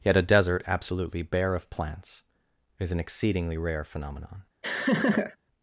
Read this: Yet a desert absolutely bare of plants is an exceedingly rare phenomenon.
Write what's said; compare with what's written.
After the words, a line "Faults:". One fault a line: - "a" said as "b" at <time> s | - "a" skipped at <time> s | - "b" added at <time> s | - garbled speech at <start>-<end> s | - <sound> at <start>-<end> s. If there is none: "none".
Yet a desert absolutely bare of plants is an exceedingly rare phenomenon.
Faults:
- laugh at 4.6-5.4 s